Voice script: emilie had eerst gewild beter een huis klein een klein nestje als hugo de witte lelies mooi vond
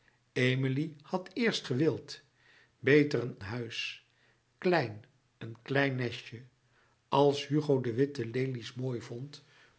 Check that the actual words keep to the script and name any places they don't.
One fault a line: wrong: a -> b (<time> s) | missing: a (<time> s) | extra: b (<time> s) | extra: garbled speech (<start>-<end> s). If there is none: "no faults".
no faults